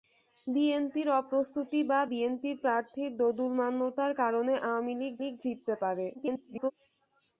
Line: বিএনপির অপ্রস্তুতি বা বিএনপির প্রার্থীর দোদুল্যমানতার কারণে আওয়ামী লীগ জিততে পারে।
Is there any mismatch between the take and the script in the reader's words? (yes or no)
yes